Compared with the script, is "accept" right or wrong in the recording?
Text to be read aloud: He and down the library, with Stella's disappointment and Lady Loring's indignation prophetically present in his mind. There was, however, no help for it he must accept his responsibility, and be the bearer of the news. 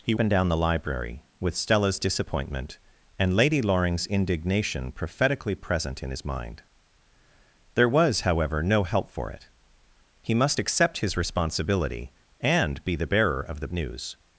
right